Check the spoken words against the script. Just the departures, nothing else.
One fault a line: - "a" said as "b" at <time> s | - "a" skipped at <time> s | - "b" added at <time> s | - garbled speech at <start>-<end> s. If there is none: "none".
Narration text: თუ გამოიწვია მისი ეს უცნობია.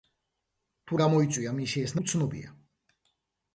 none